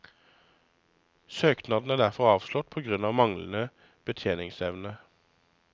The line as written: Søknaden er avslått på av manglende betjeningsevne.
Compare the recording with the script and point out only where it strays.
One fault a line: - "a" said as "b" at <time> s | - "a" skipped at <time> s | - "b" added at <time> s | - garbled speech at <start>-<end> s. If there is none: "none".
- "derfor" added at 2.0 s
- "grunn" added at 2.9 s